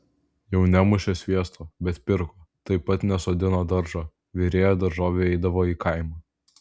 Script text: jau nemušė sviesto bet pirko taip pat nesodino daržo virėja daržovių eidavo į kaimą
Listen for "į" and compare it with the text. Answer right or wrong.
right